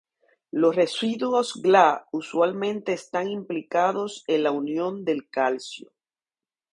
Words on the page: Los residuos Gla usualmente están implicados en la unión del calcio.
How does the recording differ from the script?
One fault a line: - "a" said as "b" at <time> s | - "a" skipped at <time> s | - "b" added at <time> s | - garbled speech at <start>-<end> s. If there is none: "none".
none